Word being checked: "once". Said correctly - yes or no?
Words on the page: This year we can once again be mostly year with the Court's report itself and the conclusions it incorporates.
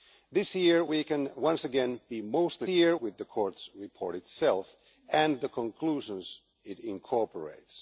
yes